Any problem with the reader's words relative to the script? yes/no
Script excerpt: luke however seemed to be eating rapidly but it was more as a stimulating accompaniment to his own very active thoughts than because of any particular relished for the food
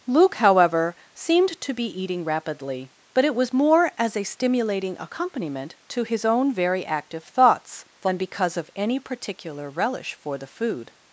yes